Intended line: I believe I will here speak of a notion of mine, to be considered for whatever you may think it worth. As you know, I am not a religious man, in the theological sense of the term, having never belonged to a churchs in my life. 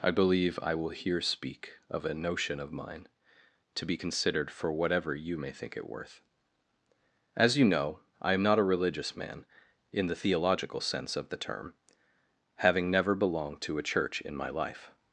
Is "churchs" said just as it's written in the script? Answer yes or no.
no